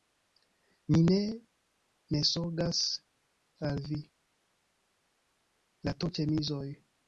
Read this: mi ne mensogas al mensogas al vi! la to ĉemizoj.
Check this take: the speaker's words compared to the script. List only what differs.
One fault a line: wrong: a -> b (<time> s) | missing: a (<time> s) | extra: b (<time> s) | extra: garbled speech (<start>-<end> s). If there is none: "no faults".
missing: mensogas al (3.8 s)